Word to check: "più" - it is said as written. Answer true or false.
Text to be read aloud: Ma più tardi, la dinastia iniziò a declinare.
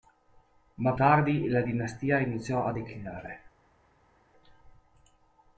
false